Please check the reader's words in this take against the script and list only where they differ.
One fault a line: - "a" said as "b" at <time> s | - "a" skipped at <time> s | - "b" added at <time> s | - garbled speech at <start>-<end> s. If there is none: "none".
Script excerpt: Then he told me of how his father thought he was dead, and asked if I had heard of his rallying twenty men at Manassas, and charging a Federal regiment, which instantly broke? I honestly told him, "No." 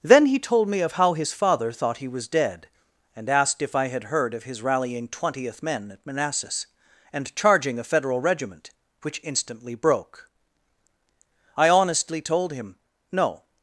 - "twenty" said as "twentieth" at 5.1 s